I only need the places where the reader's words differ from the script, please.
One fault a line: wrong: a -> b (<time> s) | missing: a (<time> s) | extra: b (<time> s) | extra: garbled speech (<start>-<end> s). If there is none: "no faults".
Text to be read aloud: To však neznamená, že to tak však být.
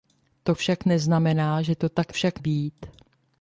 no faults